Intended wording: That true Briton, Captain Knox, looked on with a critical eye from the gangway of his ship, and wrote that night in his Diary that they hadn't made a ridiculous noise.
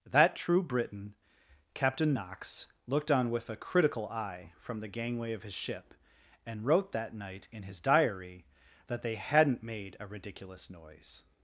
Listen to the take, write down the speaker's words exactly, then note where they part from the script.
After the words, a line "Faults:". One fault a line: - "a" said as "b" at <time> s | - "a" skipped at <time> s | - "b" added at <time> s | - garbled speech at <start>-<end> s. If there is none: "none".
That true Briton, Captain Knox, looked on with a critical eye from the gangway of his ship, and wrote that night in his Diary that they hadn't made a ridiculous noise.
Faults:
none